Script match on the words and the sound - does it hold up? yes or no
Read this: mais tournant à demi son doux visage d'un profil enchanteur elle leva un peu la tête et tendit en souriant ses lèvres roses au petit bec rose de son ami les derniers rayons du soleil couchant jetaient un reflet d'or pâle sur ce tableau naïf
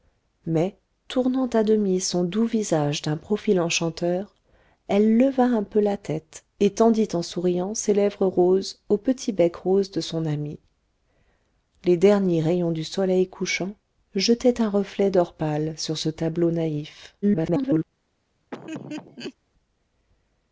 no